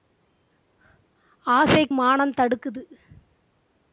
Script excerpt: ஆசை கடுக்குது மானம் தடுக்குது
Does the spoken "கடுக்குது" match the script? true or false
false